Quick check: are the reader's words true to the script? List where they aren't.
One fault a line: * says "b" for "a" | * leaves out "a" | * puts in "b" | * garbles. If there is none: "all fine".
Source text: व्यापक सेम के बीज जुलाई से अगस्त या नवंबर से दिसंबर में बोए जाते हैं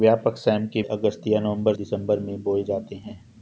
* leaves out "बीज जुलाई से"
* leaves out "से"